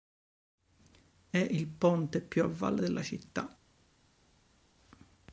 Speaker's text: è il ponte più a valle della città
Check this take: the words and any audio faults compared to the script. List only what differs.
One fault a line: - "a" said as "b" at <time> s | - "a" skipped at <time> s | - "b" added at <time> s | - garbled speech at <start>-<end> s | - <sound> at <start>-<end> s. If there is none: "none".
none